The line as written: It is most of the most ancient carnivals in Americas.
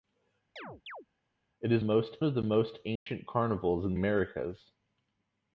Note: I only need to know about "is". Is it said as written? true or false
true